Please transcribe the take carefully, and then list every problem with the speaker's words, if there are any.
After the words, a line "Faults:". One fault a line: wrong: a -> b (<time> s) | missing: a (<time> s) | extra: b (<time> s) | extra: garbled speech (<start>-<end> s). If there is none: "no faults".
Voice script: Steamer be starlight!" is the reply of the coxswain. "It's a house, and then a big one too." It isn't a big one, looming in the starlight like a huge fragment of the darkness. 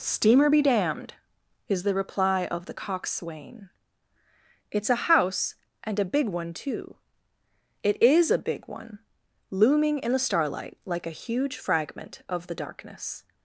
Steamer be damned!" is the reply of the coxswain. "It's a house, and a big one too." It is a big one, looming in the starlight like a huge fragment of the darkness.
Faults:
wrong: starlight -> damned (0.6 s)
missing: then (6.0 s)
wrong: isn't -> is (8.0 s)